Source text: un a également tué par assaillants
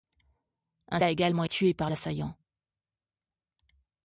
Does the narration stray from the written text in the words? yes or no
no